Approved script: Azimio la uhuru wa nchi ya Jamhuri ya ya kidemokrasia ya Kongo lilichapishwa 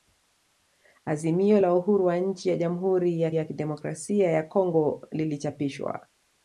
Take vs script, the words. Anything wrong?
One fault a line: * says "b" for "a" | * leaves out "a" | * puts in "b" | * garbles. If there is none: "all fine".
all fine